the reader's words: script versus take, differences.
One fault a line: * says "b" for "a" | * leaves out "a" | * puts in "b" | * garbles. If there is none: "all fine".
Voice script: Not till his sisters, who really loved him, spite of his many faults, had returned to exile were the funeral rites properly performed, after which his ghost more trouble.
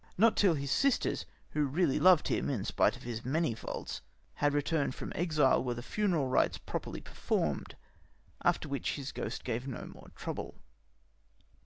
* puts in "in"
* says "from" for "to"
* puts in "gave no"